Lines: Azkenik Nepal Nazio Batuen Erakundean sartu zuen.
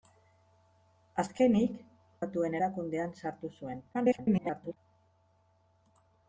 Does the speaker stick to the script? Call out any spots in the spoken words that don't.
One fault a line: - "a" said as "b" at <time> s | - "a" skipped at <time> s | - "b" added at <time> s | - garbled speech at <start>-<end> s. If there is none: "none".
- "Nepal Nazio" skipped at 1.8 s
- garbled speech at 3.9-4.8 s